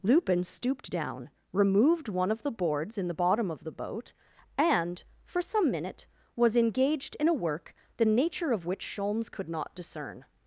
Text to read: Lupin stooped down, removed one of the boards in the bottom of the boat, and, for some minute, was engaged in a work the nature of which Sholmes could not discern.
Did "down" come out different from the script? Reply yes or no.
no